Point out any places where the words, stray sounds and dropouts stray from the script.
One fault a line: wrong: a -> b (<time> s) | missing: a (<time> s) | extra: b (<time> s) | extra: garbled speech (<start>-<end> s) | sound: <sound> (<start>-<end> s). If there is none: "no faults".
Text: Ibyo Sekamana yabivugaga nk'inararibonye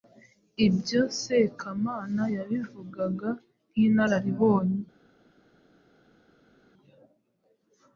no faults